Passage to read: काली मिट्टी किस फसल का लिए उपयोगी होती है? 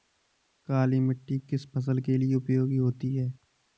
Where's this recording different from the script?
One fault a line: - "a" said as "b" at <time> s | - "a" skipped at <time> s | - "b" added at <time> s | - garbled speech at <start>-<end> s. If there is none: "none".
- "का" said as "के" at 2.0 s